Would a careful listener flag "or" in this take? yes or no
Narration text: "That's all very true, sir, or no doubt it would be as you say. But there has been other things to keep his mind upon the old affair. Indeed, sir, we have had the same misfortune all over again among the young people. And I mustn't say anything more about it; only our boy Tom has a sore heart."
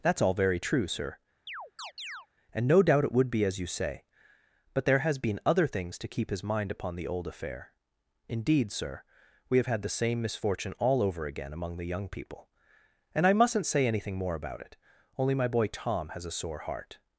yes